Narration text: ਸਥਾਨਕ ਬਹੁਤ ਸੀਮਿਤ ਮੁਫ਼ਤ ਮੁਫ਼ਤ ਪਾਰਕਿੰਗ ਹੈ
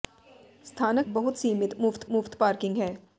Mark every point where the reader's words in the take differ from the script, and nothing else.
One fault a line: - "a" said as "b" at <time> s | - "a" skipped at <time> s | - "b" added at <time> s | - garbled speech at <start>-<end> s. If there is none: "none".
none